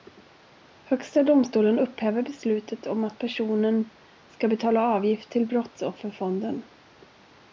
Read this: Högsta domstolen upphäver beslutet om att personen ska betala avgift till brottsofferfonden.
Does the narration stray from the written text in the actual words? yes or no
no